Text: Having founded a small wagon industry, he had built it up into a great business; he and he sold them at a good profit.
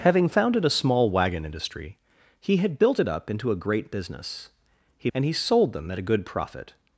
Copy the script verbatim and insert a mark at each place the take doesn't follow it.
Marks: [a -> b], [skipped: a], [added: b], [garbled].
Having founded a small wagon industry, he had built it up into a great business; he and he sold them at a good profit.